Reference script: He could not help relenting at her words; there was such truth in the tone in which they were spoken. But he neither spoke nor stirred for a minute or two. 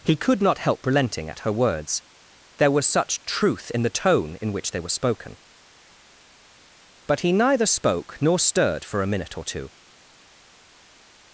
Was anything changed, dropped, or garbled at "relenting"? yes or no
no